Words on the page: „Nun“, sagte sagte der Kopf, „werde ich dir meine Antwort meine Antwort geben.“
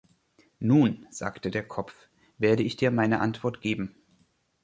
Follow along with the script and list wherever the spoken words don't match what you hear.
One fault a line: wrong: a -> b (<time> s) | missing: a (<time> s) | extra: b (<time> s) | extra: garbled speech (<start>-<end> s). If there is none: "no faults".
missing: sagte (1.5 s)
missing: meine Antwort (3.6 s)